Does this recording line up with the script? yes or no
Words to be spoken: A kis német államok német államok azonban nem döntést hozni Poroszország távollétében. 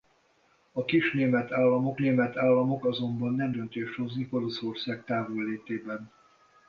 yes